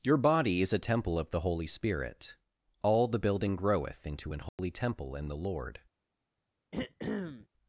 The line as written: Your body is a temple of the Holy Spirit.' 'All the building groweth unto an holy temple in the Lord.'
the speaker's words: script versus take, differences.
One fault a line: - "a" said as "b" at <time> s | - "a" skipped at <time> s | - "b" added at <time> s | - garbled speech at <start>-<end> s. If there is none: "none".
- "unto" said as "into" at 4.1 s